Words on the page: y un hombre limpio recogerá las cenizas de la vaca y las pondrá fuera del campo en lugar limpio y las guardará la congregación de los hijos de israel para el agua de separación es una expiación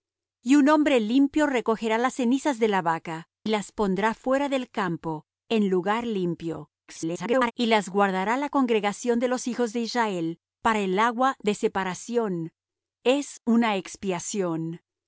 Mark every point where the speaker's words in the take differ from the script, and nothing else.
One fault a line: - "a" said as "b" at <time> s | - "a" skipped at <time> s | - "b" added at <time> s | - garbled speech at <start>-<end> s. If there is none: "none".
- "y" skipped at 3.3 s
- garbled speech at 6.9-7.5 s